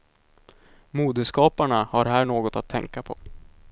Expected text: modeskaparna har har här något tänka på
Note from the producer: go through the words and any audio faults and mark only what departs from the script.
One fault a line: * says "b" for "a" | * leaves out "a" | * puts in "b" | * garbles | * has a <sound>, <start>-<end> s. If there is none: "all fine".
* leaves out "har"
* puts in "att"